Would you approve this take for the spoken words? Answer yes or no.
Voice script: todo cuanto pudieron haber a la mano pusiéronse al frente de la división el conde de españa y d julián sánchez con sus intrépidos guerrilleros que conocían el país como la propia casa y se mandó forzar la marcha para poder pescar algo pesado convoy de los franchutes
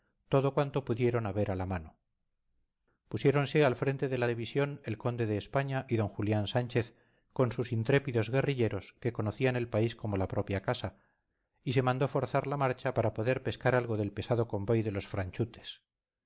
no